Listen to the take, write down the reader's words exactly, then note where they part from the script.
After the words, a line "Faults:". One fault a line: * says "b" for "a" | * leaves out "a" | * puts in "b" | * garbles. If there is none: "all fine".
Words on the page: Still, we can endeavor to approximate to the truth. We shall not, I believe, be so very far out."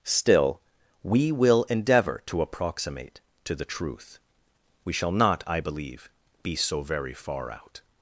Still, we will endeavor to approximate to the truth. We shall not, I believe, be so very far out."
Faults:
* says "will" for "can"